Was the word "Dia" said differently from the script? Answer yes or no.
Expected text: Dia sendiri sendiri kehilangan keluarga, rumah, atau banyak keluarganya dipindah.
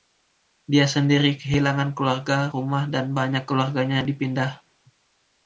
no